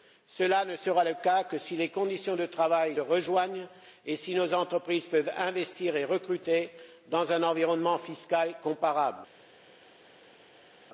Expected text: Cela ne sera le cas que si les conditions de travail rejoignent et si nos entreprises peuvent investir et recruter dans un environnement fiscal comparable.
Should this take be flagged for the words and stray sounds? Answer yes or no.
no